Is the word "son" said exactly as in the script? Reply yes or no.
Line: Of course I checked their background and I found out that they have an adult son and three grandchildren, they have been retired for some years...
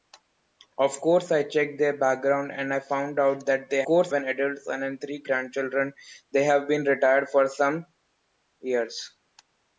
yes